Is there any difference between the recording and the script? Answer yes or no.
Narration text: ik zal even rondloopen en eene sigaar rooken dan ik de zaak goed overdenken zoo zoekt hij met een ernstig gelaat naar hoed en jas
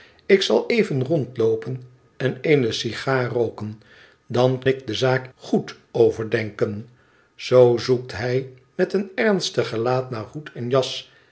no